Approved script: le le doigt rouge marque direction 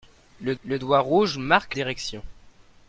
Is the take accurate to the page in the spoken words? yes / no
yes